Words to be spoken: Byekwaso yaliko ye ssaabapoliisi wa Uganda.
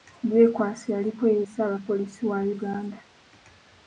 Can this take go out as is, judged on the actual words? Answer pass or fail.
pass